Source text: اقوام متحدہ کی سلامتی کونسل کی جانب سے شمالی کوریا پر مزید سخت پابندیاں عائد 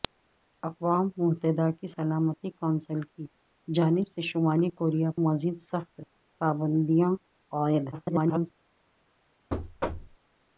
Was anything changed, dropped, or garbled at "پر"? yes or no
yes